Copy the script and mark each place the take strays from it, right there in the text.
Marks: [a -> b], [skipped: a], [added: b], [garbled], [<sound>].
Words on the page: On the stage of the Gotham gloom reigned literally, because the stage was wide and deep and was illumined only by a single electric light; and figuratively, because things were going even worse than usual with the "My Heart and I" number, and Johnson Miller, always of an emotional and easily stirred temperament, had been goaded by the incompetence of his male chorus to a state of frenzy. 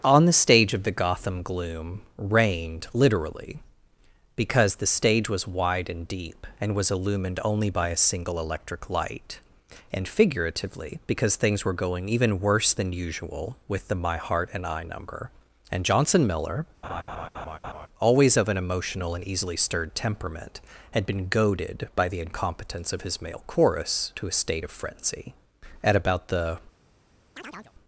On the stage of the Gotham gloom reigned literally, because the stage was wide and deep and was illumined only by a single electric light; and figuratively, because things were going even worse than usual with the "My Heart and I" number, and Johnson Miller, [laugh] always of an emotional and easily stirred temperament, had been goaded by the incompetence of his male chorus to a state of frenzy. [added: At about the] [chirp]